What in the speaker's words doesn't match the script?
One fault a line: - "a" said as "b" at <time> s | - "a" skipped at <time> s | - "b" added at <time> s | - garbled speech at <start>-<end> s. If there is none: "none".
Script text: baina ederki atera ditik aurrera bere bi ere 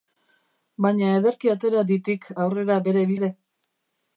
none